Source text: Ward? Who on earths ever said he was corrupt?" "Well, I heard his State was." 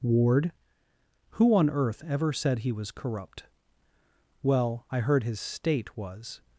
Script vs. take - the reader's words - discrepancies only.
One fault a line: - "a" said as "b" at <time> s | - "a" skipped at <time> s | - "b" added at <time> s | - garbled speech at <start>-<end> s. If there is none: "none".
- "earths" said as "earth" at 1.7 s